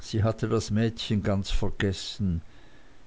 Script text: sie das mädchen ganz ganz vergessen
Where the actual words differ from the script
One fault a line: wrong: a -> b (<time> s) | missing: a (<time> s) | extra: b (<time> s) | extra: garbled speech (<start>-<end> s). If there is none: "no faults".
extra: hatte (0.2 s)
missing: ganz (1.5 s)